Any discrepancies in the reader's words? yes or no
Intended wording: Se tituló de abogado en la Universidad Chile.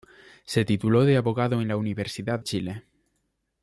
no